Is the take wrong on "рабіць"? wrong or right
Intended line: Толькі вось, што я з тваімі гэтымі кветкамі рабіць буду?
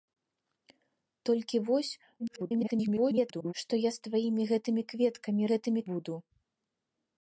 wrong